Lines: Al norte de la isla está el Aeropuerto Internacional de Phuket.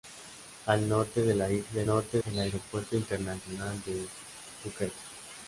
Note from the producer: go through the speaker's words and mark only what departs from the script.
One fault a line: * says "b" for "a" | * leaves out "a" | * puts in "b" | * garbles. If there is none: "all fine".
* says "norte" for "está"